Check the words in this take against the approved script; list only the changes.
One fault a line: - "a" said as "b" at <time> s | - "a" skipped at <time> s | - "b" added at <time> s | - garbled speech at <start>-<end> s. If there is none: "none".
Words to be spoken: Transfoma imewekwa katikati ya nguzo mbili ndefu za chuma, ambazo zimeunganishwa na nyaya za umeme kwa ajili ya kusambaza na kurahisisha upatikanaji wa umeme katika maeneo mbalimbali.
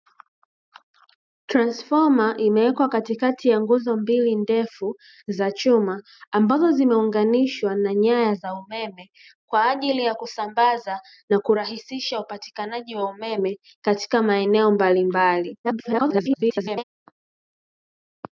- garbled speech at 15.6-16.8 s